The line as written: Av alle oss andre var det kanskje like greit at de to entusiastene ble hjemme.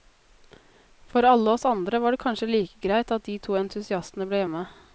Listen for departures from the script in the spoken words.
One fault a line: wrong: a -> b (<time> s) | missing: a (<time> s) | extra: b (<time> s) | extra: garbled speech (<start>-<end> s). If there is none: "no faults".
wrong: Av -> For (1.1 s)